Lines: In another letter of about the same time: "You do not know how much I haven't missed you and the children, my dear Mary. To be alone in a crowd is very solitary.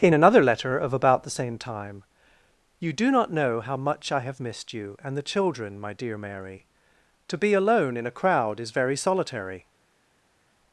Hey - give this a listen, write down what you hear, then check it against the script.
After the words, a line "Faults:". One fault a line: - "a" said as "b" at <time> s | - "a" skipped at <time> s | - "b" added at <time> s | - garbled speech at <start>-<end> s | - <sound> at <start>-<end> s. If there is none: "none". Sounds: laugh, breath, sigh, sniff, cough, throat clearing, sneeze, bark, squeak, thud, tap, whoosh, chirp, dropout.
In another letter of about the same time: "You do not know how much I have missed you and the children, my dear Mary. To be alone in a crowd is very solitary.
Faults:
- "haven't" said as "have" at 4.2 s